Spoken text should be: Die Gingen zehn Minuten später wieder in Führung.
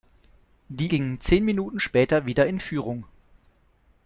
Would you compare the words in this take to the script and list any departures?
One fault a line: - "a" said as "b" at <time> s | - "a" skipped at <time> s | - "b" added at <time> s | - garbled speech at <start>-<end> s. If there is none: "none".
none